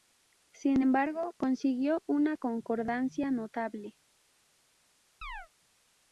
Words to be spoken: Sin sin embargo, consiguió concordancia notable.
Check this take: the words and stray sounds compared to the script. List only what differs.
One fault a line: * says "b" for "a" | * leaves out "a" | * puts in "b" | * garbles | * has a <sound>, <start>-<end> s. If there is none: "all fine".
* leaves out "sin"
* puts in "una"
* has a chirp, 5.2-5.5 s